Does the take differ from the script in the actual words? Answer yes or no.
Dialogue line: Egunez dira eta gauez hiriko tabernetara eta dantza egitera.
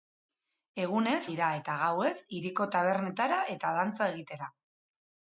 no